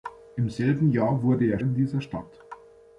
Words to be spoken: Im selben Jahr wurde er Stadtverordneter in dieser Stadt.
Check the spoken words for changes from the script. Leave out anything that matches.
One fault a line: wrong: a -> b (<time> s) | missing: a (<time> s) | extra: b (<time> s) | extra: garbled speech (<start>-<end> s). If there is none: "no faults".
missing: Stadtverordneter (1.6 s)